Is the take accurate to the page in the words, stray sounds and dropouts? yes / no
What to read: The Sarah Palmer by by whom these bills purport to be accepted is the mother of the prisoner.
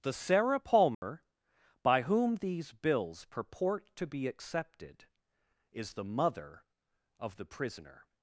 no